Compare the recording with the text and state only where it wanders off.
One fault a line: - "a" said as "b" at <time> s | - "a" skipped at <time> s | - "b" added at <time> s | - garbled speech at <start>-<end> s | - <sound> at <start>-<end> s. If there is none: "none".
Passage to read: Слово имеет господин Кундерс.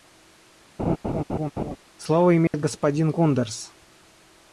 - laugh at 0.8-1.8 s
- dropout at 2.5-2.5 s